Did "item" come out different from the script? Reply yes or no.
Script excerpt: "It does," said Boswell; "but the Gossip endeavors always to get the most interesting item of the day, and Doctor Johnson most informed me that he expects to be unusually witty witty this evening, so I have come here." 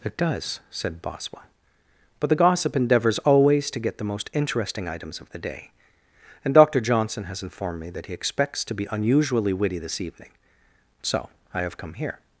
yes